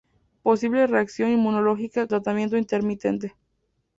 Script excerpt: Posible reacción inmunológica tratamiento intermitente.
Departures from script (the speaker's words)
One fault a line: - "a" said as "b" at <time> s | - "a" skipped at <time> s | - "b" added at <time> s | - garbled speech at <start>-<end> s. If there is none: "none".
none